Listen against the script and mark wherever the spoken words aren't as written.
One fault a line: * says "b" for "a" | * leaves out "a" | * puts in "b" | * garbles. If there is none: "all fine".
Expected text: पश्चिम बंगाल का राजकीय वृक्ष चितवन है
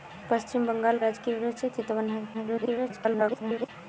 * leaves out "का"
* garbles